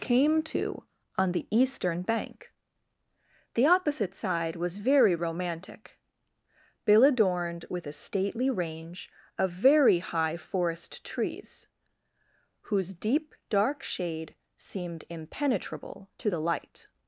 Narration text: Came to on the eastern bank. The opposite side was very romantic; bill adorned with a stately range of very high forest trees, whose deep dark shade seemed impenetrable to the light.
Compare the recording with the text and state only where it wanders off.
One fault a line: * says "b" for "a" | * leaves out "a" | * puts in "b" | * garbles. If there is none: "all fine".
all fine